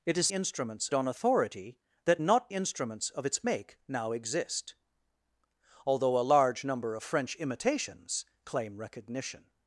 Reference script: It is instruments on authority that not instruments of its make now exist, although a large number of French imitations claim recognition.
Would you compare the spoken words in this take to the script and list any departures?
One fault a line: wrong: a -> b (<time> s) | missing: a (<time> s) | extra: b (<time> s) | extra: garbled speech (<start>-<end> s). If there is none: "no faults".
no faults